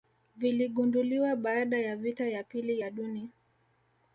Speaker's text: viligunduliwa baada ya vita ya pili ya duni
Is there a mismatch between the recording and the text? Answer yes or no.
no